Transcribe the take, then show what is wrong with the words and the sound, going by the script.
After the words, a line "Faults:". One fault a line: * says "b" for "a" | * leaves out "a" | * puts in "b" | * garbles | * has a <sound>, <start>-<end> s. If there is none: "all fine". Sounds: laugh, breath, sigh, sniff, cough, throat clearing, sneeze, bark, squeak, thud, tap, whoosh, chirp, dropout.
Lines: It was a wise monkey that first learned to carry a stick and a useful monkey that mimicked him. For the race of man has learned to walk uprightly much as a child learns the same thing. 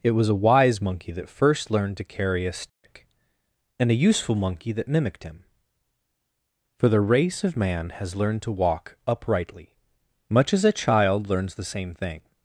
It was a wise monkey that first learned to carry a stick and a useful monkey that mimicked him. For the race of man has learned to walk uprightly much as a child learns the same thing.
Faults:
* has a dropout, 2.7-2.8 s